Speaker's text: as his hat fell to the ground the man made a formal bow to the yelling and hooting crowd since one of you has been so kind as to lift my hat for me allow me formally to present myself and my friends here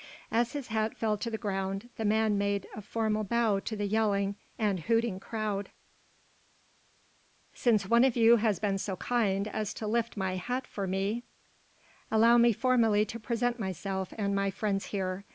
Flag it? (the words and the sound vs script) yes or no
no